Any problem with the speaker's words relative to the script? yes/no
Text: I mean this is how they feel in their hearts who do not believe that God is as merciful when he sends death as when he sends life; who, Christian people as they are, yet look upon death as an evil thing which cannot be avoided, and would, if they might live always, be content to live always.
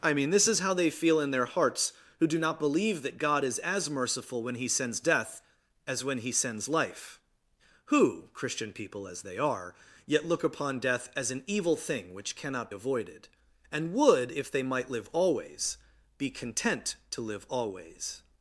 yes